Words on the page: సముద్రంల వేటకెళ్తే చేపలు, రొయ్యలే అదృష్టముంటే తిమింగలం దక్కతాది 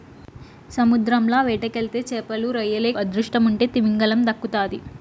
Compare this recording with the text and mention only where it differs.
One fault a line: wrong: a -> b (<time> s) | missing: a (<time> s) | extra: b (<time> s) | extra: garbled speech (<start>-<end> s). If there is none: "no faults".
no faults